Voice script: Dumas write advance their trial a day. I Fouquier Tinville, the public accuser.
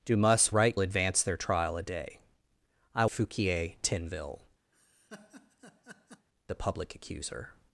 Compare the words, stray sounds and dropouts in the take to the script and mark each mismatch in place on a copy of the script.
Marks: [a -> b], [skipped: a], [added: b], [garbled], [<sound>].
Dumas write advance their trial a day. I Fouquier Tinville, [laugh] the public accuser.